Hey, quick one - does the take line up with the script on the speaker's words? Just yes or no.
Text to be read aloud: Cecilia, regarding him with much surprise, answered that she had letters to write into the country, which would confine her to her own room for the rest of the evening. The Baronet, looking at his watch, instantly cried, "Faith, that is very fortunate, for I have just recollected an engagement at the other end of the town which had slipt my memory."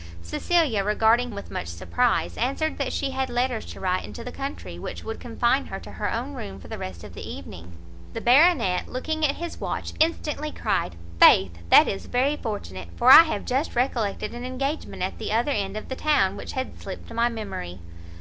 no